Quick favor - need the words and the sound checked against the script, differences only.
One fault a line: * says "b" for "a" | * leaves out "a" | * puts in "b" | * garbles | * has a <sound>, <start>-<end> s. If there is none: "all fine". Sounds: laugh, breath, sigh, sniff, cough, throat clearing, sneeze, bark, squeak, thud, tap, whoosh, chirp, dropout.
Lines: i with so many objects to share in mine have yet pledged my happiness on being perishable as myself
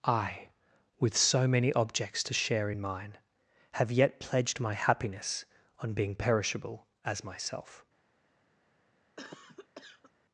* has a cough, 9.2-10.1 s